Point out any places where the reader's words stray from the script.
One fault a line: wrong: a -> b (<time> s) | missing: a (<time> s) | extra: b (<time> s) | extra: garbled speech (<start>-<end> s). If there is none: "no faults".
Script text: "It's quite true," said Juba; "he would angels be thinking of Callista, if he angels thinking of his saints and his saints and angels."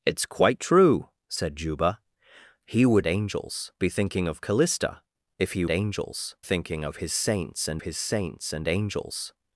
no faults